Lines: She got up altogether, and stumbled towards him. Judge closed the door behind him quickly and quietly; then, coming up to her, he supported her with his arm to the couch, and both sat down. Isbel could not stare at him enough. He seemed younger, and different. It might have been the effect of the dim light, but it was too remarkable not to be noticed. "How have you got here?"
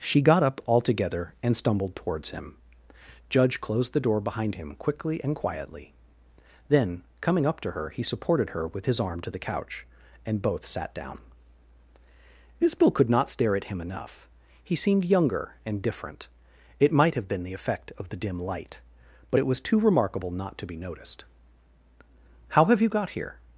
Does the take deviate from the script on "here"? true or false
false